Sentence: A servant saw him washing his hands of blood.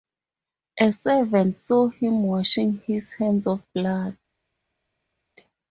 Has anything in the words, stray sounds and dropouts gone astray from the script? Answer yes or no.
no